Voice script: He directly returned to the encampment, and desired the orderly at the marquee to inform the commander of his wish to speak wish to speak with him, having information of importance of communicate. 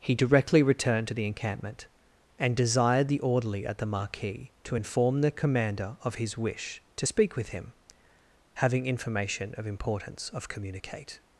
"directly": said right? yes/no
yes